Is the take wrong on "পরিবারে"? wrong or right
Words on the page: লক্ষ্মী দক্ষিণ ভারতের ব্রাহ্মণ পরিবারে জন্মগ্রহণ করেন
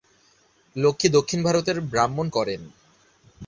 wrong